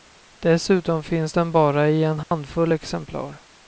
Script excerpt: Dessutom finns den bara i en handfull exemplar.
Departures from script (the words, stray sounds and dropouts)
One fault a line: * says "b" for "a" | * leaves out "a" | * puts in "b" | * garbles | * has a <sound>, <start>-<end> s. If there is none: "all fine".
* has a dropout, 2.2-2.3 s